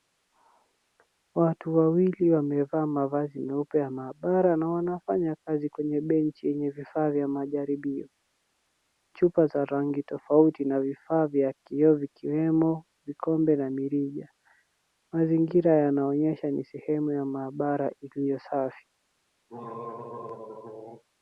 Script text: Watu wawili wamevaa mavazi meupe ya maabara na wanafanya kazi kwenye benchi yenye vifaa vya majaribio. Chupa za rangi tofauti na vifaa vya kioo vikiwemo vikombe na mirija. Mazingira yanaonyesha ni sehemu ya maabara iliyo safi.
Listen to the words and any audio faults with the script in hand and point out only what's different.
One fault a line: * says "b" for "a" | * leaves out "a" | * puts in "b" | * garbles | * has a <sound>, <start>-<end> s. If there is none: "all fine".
* has a throat clearing, 19.5-21.0 s